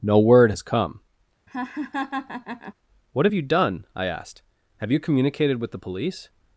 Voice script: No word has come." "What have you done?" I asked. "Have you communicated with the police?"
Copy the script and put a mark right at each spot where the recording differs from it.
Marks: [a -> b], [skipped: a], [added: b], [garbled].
No word has come." "What have you done?" I asked. "Have you communicated with the police?"